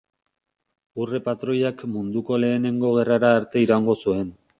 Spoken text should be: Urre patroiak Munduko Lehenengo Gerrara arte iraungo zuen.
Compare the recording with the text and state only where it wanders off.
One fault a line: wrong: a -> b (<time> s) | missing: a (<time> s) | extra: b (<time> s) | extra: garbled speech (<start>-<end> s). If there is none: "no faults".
no faults